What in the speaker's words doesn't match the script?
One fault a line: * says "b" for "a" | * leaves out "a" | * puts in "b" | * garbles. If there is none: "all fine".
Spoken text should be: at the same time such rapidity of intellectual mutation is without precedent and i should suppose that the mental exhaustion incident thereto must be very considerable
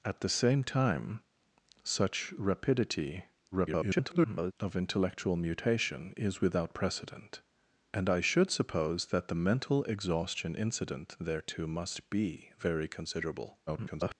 * garbles
* garbles